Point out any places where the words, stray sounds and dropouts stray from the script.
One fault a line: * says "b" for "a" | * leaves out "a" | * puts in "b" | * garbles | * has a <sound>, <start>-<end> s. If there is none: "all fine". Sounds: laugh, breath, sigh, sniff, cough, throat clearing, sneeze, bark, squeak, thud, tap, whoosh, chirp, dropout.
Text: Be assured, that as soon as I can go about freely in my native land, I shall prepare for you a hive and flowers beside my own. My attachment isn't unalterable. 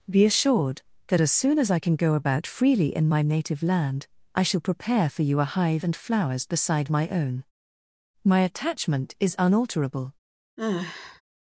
* says "is" for "isn't"
* has a sigh, 10.6-11.2 s